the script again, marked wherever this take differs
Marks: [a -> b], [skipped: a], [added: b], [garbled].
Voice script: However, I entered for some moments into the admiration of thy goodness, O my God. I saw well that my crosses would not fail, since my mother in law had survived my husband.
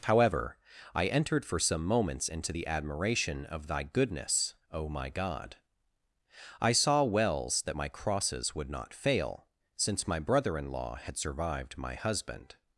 However, I entered for some moments into the admiration of thy goodness, O my God. I saw [well -> wells] that my crosses would not fail, since my [mother -> brother] in law had survived my husband.